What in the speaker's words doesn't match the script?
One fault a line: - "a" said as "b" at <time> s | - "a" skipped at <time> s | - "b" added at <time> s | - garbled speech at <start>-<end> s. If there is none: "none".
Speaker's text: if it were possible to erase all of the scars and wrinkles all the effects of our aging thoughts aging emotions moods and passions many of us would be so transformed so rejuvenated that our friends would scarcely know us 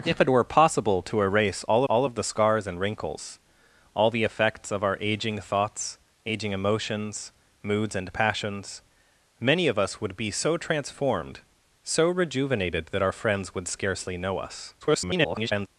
- "all" added at 1.8 s
- garbled speech at 14.8-15.7 s